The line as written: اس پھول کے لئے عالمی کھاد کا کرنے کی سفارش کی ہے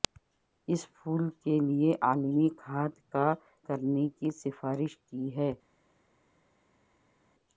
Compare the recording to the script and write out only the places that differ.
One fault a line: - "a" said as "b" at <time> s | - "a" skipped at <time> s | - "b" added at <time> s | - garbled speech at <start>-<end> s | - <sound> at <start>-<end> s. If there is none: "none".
none